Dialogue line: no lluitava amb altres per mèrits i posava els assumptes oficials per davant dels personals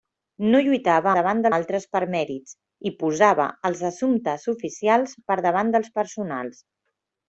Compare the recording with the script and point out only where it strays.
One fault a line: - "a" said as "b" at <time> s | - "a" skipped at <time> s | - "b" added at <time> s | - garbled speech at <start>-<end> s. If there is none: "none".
- "amb" said as "davant" at 1.2 s